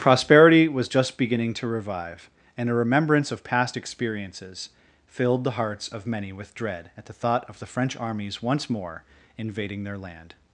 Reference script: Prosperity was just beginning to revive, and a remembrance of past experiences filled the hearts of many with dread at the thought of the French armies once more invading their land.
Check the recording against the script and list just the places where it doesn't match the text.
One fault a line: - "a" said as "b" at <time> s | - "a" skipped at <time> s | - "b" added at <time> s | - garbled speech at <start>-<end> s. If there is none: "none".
none